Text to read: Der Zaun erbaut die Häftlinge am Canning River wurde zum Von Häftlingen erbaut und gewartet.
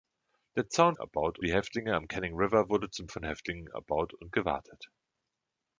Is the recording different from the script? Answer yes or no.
no